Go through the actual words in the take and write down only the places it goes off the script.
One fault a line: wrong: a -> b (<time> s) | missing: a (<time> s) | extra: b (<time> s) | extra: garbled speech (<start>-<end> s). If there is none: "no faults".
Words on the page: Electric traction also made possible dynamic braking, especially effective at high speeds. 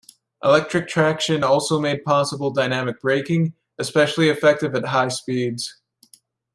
no faults